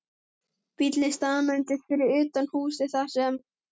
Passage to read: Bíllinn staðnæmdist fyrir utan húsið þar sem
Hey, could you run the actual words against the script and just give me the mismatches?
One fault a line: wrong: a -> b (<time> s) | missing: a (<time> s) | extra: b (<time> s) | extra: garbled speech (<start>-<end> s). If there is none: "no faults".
no faults